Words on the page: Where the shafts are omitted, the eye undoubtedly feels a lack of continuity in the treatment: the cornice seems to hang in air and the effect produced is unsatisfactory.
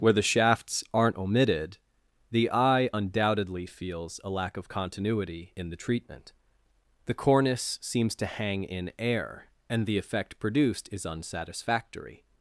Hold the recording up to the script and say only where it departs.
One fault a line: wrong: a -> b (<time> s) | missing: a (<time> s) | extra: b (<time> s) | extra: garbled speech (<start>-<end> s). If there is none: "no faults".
wrong: are -> aren't (0.9 s)